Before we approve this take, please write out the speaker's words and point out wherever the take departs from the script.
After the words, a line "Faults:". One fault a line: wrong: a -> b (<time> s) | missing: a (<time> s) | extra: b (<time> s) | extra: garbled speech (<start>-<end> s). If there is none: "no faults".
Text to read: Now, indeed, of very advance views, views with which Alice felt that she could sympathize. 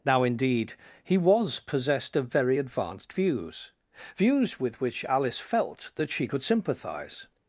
Now, indeed, he was possessed of very advanced views, views with which Alice felt that she could sympathize.
Faults:
extra: he was possessed (1.0 s)
wrong: advance -> advanced (2.6 s)